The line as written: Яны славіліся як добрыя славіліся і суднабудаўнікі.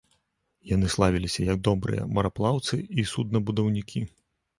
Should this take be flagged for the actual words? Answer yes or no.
yes